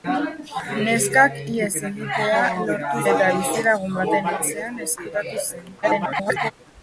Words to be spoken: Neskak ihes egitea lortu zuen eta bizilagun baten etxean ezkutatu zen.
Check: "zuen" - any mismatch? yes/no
yes